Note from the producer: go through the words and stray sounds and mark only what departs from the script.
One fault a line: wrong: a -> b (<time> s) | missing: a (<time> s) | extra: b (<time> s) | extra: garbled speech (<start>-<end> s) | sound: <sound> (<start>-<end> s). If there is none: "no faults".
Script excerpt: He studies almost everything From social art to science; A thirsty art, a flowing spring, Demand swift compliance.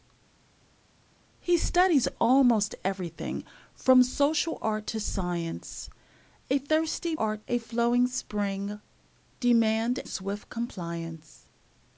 no faults